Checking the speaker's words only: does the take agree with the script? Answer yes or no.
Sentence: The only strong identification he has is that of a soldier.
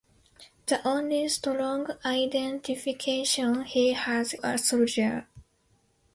no